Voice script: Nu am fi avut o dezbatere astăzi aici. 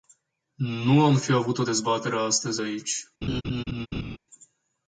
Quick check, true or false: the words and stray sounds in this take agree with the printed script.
false